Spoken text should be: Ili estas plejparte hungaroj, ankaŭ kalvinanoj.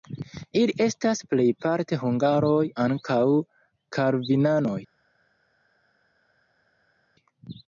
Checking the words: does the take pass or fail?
pass